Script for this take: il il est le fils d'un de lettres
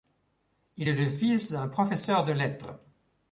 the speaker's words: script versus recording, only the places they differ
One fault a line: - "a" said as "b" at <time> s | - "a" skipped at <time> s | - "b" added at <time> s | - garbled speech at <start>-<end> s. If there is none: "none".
- "il" skipped at 0.9 s
- "professeur" added at 1.7 s